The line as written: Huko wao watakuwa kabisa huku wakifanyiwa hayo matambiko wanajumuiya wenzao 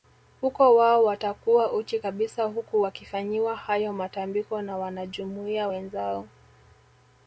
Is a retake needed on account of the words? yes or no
yes